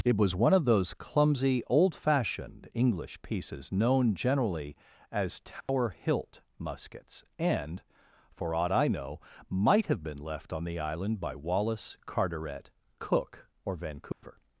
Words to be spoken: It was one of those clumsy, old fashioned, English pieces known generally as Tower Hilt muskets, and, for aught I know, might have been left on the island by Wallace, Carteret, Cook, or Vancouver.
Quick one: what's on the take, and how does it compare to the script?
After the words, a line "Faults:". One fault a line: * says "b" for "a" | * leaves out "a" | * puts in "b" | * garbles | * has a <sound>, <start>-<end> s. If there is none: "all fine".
It was one of those clumsy, old fashioned, English pieces known generally as Tower Hilt muskets, and, for aught I know, might have been left on the island by Wallace, Carteret, Cook, or Vancouver.
Faults:
* has a dropout, 5.6-5.7 s
* has a dropout, 14.1-14.2 s